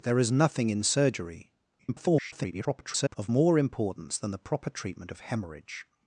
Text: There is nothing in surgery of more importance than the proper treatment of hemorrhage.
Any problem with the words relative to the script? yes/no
yes